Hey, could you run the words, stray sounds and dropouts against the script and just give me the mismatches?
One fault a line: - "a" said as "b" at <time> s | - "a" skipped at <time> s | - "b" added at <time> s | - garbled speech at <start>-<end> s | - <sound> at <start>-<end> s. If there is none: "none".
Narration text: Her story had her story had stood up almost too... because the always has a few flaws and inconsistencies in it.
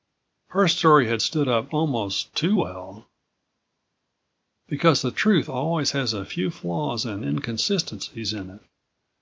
- "her story had" skipped at 1.2 s
- "well" added at 2.5 s
- "truth" added at 5.1 s